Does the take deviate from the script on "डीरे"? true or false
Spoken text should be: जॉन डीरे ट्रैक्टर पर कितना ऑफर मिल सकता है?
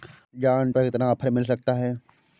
true